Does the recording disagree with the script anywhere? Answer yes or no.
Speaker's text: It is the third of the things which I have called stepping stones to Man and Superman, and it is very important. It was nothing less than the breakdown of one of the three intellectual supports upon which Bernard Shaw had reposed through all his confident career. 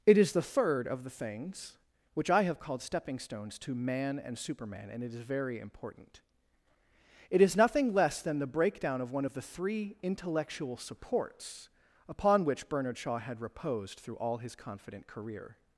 yes